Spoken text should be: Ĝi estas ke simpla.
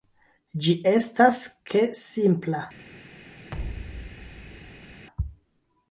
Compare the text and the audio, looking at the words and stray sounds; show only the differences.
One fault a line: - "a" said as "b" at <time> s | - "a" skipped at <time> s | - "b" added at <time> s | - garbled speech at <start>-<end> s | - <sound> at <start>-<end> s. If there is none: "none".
- thud at 3.5-5.1 s